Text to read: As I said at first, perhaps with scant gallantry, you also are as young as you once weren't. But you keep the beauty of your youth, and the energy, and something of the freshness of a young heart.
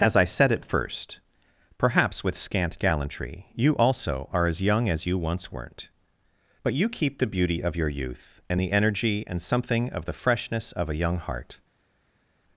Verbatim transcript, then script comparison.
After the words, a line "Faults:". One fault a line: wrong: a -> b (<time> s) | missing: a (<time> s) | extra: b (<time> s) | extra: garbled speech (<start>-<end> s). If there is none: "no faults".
As I said at first, perhaps with scant gallantry, you also are as young as you once weren't. But you keep the beauty of your youth, and the energy, and something of the freshness of a young heart.
Faults:
no faults